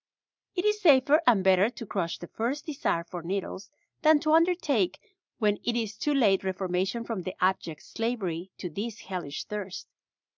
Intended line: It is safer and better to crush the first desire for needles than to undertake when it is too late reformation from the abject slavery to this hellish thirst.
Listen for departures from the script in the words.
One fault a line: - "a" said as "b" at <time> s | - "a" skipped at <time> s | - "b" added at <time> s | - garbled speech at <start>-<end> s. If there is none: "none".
none